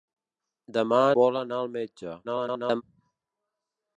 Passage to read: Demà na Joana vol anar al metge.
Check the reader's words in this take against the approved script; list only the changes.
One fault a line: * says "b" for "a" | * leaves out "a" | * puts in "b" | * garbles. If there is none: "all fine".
* leaves out "na Joana"
* garbles